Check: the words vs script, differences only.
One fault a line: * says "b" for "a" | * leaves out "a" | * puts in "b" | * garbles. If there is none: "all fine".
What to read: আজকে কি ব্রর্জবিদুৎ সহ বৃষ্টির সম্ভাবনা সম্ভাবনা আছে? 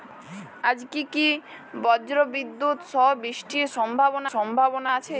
all fine